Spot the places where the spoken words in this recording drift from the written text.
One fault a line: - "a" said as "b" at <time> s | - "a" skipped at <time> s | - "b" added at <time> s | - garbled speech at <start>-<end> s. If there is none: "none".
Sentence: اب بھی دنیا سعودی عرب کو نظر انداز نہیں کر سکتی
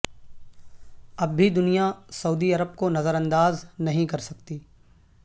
none